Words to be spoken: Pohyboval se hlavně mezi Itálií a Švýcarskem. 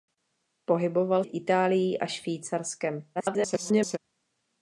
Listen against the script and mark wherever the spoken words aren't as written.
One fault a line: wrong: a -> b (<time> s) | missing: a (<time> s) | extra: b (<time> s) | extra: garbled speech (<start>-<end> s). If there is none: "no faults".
missing: se hlavně mezi (1.2 s)
extra: garbled speech (3.1-4.0 s)